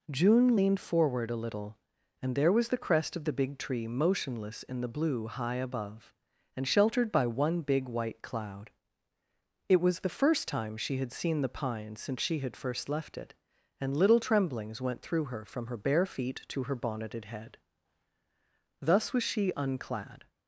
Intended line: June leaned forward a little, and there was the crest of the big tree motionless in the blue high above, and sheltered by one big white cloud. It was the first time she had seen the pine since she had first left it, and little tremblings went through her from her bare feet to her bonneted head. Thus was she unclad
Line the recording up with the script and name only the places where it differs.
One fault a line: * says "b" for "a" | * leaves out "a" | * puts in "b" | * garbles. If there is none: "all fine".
all fine